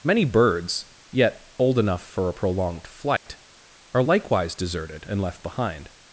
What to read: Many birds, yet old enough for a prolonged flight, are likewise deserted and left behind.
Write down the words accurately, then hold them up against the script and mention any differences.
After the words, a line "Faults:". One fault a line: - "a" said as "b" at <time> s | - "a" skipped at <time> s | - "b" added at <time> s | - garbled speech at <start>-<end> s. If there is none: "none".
Many birds, yet old enough for a prolonged flight, are likewise deserted and left behind.
Faults:
none